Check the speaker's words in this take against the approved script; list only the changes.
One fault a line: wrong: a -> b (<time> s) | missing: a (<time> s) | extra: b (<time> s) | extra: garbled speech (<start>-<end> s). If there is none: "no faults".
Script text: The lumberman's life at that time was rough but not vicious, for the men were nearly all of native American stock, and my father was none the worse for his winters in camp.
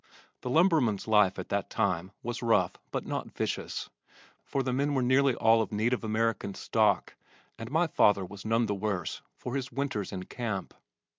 no faults